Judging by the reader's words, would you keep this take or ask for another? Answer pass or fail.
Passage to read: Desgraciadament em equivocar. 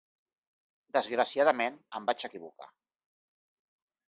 fail